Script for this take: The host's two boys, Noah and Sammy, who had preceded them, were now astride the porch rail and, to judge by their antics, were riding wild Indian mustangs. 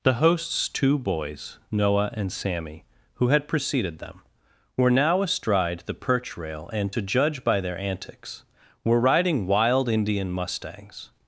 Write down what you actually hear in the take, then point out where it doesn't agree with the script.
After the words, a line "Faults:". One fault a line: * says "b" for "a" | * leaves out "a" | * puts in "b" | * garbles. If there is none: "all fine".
The host's two boys, Noah and Sammy, who had preceded them, were now astride the perch rail and, to judge by their antics, were riding wild Indian mustangs.
Faults:
* says "perch" for "porch"